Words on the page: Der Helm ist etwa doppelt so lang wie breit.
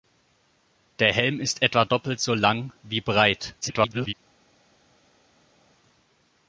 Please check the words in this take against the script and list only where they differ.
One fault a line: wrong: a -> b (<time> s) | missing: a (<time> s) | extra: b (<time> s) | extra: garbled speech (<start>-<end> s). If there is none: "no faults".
extra: garbled speech (3.6-4.1 s)